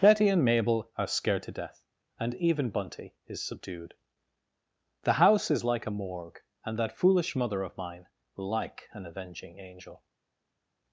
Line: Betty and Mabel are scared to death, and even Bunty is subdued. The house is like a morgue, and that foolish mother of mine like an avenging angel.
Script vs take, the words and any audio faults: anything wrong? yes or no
no